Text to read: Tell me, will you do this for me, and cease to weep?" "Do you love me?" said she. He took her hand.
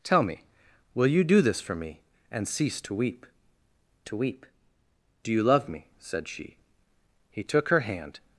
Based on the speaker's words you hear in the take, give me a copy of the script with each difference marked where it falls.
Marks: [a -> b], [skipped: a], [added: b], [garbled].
Tell me, will you do this for me, and cease to weep?" [added: to weep] "Do you love me?" said she. He took her hand.